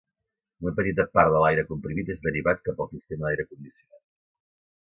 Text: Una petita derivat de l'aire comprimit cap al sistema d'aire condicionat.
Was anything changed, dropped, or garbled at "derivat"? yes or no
yes